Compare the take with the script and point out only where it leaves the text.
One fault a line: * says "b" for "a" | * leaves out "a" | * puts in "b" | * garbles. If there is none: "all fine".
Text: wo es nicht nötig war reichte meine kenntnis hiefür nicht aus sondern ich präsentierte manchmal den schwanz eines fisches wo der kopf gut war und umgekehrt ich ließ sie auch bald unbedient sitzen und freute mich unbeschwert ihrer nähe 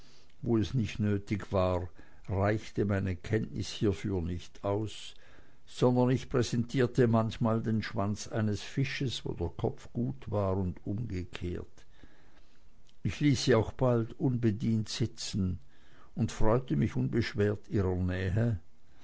all fine